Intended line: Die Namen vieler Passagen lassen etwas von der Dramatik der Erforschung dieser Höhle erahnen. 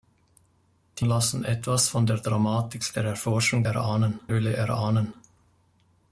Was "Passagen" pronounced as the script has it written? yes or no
no